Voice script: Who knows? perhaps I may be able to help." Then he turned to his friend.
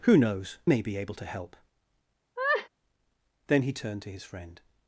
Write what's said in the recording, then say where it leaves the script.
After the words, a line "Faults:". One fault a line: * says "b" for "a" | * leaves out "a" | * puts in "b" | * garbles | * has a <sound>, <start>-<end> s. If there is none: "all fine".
Who knows? may be able to help." Then he turned to his friend.
Faults:
* leaves out "perhaps I"
* has a laugh, 2.4-2.7 s